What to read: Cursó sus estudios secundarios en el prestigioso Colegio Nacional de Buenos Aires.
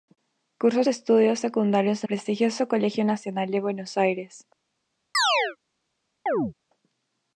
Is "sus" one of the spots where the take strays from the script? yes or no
yes